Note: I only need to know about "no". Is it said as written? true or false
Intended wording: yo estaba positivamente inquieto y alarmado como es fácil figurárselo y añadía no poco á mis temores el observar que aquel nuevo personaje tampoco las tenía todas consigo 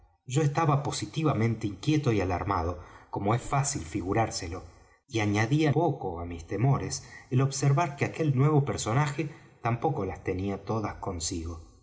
false